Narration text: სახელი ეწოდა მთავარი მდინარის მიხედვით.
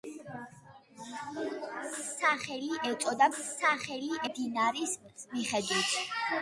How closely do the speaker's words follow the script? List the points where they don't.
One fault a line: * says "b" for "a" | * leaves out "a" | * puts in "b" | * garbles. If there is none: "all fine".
* says "სახელი" for "მთავარი"